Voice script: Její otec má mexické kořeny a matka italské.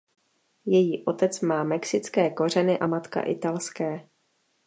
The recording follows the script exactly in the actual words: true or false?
true